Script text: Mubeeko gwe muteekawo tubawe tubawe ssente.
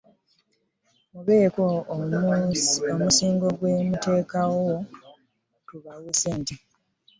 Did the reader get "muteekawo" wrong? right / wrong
right